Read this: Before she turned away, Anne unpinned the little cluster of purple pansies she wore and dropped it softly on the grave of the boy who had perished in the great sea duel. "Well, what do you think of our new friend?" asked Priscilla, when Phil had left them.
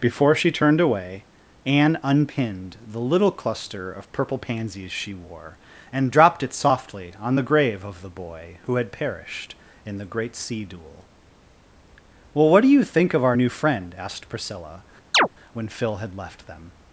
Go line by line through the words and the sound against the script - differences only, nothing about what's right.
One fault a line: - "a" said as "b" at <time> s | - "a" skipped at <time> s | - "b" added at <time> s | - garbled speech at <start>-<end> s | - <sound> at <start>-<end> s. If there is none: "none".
- chirp at 15.1-15.3 s